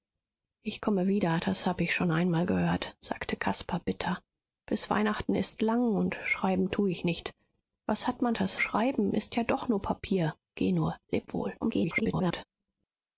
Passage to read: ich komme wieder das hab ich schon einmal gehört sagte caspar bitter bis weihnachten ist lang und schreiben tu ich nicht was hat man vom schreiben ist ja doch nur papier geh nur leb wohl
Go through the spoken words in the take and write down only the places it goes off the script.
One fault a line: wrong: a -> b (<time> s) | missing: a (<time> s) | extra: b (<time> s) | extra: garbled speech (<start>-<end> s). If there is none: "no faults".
wrong: vom -> das (8.3 s)
extra: garbled speech (11.6-12.5 s)